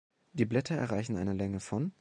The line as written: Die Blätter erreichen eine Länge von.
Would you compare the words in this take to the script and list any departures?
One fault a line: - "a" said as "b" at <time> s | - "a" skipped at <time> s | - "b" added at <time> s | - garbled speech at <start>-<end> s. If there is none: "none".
none